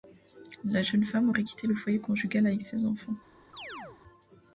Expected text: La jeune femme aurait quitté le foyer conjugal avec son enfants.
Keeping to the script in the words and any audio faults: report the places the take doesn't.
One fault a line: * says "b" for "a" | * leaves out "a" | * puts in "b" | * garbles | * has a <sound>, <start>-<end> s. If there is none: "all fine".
* says "ses" for "son"
* has a chirp, 3.5-4.0 s